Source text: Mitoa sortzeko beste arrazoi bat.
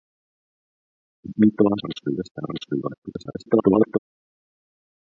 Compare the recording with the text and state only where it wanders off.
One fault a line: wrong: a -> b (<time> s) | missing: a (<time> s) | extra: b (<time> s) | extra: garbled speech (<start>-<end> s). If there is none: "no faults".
wrong: sortzeko -> arrazoi (1.8 s)
extra: garbled speech (3.0-4.0 s)